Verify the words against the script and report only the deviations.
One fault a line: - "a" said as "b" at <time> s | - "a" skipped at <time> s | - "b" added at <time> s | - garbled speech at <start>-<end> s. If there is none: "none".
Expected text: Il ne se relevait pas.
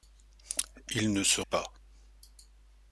- "relevait" skipped at 1.4 s